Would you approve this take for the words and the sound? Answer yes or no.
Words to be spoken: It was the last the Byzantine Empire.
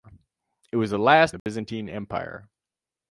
no